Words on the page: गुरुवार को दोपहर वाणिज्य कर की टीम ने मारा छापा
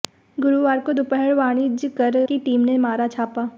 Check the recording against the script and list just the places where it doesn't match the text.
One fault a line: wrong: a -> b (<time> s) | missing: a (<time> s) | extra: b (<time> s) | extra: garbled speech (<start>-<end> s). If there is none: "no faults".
no faults